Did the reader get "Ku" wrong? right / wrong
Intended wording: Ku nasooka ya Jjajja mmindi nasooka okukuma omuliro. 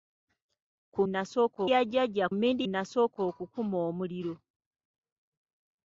right